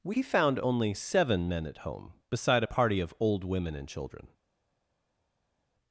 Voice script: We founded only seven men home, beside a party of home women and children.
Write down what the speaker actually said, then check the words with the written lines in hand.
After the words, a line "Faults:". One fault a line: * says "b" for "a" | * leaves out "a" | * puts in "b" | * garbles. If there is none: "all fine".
We found only seven men at home, beside a party of old women and children.
Faults:
* says "found" for "founded"
* puts in "at"
* says "old" for "home"